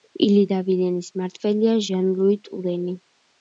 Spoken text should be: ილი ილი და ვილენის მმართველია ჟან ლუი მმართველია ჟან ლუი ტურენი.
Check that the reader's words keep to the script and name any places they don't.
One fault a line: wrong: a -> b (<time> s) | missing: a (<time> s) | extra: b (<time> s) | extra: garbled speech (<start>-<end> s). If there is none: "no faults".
missing: ილი (0.5 s)
missing: მმართველია ჟან ლუი (2.4 s)